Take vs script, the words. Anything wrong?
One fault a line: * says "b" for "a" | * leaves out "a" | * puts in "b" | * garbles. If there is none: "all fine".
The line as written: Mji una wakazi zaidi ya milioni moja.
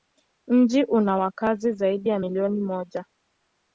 all fine